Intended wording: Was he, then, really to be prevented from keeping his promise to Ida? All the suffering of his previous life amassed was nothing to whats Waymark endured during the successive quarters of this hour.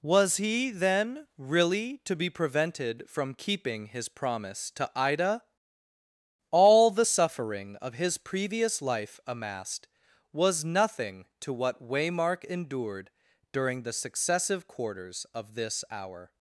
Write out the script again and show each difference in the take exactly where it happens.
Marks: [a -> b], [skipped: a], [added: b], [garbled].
Was he, then, really to be prevented from keeping his promise to Ida? All the suffering of his previous life amassed was nothing to [whats -> what] Waymark endured during the successive quarters of this hour.